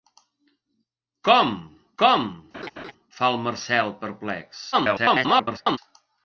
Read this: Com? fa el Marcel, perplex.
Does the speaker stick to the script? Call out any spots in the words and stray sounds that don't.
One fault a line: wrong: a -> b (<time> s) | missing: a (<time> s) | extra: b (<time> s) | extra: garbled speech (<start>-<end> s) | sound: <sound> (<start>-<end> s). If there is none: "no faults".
extra: com (2.0 s)
sound: laugh (2.5-2.9 s)
extra: garbled speech (4.7-5.8 s)